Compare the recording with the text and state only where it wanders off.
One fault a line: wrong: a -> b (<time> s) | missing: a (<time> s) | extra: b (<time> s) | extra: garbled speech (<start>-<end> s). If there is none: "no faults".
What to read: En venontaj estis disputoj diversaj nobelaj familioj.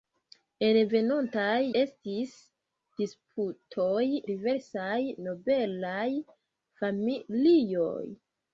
no faults